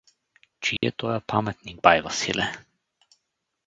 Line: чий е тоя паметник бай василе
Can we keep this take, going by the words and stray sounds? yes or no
no